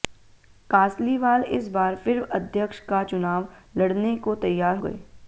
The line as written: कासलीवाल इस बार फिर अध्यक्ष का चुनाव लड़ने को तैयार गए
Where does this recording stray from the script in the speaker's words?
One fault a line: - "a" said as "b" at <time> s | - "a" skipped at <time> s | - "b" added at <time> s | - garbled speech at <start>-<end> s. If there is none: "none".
none